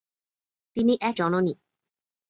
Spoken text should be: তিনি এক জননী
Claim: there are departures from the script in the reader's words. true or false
false